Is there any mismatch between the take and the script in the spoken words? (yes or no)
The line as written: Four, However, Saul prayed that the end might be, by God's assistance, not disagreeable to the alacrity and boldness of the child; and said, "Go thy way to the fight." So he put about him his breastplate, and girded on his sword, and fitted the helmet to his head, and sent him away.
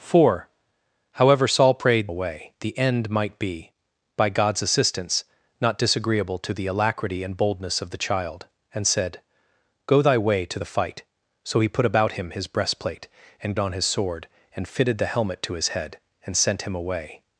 yes